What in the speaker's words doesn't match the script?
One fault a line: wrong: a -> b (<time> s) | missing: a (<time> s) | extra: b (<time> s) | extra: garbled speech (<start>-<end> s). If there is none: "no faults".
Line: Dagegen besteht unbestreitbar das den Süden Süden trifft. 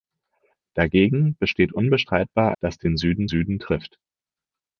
no faults